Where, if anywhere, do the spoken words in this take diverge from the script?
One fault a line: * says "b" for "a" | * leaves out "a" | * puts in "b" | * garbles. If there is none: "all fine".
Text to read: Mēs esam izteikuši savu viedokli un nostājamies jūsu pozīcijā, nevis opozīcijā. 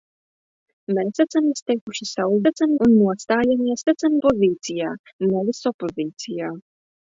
* says "esam" for "viedokli"
* says "esam" for "jūsu"